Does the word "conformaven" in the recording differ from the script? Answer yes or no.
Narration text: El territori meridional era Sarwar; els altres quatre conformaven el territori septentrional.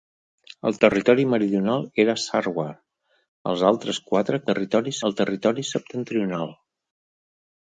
yes